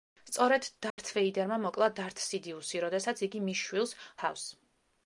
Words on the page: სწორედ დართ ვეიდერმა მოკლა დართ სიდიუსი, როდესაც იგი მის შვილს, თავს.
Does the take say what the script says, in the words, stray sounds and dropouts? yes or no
no